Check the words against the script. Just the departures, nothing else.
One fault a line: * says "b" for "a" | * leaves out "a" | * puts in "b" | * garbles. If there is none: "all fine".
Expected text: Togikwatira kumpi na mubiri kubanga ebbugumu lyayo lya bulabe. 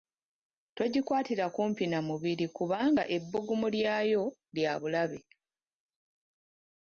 all fine